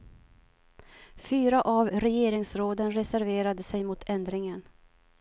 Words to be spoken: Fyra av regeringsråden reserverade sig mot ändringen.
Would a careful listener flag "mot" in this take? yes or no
no